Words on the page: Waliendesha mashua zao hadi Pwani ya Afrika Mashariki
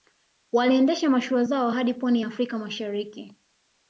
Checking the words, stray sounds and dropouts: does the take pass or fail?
pass